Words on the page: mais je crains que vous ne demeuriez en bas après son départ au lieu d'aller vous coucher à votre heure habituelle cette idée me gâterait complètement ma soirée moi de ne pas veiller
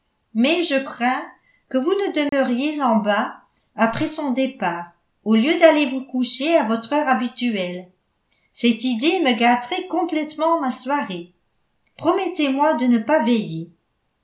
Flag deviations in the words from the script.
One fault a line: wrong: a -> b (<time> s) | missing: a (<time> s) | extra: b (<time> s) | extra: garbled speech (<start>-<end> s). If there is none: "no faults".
extra: promettez (12.0 s)